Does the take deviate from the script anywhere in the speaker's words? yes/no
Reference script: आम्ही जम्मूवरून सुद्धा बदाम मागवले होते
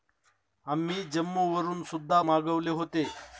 yes